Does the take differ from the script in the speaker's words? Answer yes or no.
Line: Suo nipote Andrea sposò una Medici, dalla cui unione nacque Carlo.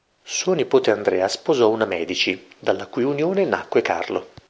no